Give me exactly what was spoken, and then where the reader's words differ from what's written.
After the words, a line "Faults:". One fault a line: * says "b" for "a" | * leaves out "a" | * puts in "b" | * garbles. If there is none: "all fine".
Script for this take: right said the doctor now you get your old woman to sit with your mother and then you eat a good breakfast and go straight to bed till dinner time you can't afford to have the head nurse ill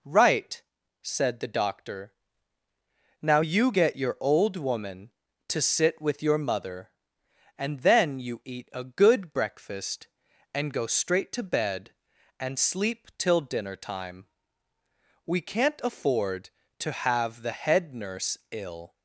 right said the doctor now you get your old woman to sit with your mother and then you eat a good breakfast and go straight to bed and sleep till dinner time we can't afford to have the head nurse ill
Faults:
* puts in "and sleep"
* says "we" for "you"